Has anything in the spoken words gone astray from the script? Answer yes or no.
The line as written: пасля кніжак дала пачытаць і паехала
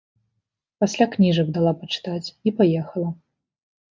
no